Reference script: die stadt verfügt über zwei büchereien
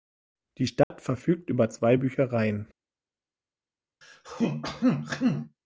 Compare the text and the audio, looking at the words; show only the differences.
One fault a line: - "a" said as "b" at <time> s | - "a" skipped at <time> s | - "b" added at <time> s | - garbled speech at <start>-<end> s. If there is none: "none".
none